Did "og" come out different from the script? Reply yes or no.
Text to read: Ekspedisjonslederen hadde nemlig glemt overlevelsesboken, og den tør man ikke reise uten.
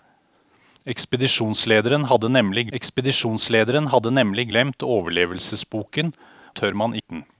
yes